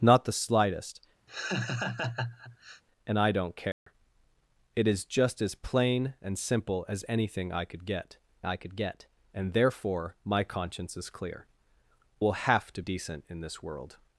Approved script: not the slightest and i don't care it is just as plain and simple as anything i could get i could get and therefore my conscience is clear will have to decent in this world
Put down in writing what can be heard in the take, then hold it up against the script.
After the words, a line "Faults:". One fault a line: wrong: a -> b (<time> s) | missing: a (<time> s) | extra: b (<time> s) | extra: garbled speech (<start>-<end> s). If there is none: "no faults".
not the slightest and i don't care it is just as plain and simple as anything i could get i could get and therefore my conscience is clear will have to decent in this world
Faults:
no faults